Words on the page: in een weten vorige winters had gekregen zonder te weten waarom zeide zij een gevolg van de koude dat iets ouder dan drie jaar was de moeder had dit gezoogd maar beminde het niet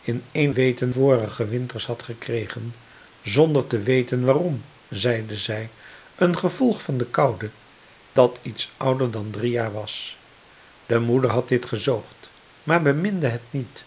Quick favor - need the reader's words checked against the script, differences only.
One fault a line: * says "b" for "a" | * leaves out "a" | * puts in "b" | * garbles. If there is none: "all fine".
all fine